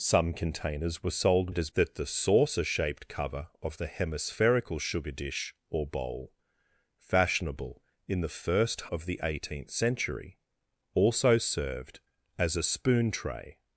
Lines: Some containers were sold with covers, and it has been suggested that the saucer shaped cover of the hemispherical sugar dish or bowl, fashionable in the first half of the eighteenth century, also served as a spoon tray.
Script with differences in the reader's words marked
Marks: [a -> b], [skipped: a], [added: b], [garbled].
Some containers were sold [skipped: with covers, and] it has [skipped: been suggested] that the saucer shaped cover of the hemispherical sugar dish or bowl, fashionable in the first [skipped: half] of the eighteenth century, also served as a spoon tray.